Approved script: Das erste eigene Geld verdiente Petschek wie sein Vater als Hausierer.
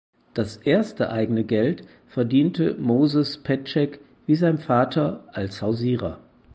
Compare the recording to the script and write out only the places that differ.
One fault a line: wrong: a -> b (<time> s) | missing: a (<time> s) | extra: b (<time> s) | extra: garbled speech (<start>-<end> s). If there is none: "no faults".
extra: Moses (2.8 s)